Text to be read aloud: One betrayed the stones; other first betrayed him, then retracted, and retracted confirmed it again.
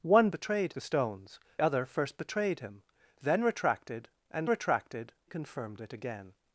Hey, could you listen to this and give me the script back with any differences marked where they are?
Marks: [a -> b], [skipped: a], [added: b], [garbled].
One betrayed the stones; other first betrayed him, then retracted, and retracted confirmed it again.